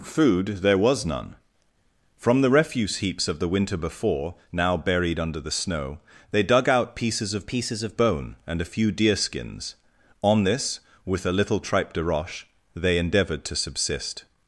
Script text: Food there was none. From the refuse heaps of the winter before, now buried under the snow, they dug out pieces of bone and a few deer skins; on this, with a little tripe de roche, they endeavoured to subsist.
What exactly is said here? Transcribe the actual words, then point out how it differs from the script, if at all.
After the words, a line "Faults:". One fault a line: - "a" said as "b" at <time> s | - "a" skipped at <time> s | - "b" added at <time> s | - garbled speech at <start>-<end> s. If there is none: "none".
Food there was none. From the refuse heaps of the winter before, now buried under the snow, they dug out pieces of pieces of bone and a few deer skins; on this, with a little tripe de roche, they endeavoured to subsist.
Faults:
- "pieces of" added at 7.5 s